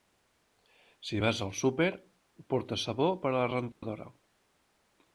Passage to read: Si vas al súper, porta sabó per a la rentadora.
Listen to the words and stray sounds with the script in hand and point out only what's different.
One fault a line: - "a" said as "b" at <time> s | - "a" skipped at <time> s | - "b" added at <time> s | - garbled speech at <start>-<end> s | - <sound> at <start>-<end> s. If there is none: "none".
- dropout at 3.7-3.8 s